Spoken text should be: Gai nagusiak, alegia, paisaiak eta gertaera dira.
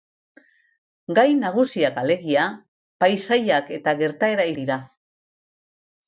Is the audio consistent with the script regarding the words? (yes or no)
yes